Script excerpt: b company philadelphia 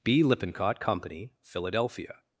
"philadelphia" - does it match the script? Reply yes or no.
yes